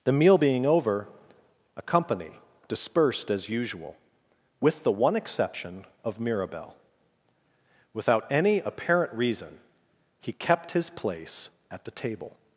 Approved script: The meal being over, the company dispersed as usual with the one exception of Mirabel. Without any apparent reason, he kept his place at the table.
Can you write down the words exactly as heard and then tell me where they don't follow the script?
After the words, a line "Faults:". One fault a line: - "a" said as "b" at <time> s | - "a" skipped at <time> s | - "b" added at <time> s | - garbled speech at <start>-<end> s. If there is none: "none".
The meal being over, a company dispersed as usual with the one exception of Mirabel. Without any apparent reason, he kept his place at the table.
Faults:
- "the" said as "a" at 1.8 s